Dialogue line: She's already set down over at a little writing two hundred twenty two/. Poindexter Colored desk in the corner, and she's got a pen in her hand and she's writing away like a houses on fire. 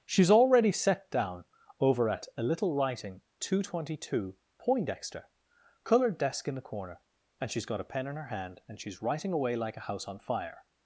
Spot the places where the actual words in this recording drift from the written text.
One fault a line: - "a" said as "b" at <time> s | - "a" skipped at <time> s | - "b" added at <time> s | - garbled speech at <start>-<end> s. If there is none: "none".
- "houses" said as "house" at 9.9 s